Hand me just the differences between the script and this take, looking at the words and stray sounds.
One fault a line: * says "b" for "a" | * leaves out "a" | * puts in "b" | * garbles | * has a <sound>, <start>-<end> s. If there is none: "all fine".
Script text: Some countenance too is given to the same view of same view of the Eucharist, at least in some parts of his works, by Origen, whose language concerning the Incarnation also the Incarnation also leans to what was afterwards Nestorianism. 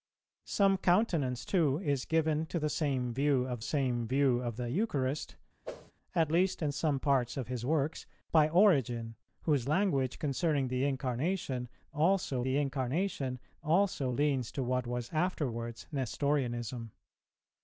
* has a whoosh, 5.6-5.9 s